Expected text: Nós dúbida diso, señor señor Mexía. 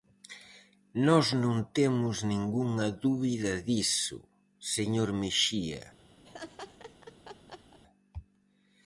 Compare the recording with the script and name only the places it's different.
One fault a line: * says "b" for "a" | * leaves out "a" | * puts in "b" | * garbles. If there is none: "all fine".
* puts in "non temos ningunha"
* leaves out "señor"